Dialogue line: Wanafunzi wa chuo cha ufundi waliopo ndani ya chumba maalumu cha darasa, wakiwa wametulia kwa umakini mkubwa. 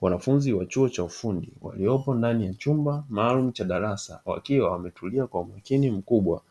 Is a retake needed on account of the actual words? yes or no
no